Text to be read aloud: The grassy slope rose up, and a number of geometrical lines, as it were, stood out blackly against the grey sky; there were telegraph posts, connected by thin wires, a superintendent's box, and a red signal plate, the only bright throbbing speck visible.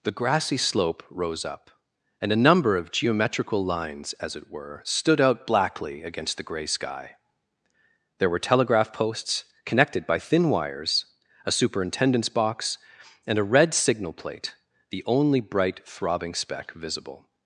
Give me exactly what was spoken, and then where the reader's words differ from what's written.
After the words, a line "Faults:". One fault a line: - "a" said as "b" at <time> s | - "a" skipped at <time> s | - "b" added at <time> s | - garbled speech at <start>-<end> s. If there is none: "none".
The grassy slope rose up, and a number of geometrical lines, as it were, stood out blackly against the grey sky; there were telegraph posts, connected by thin wires, a superintendent's box, and a red signal plate, the only bright throbbing speck visible.
Faults:
none